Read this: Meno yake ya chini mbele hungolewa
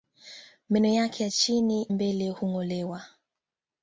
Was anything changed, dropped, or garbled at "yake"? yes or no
no